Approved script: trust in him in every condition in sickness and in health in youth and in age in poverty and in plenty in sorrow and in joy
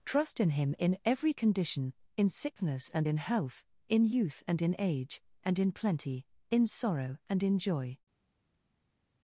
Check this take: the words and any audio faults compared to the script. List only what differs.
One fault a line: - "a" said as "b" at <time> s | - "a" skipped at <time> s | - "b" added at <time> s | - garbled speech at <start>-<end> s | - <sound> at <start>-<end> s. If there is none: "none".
- "in poverty" skipped at 5.2 s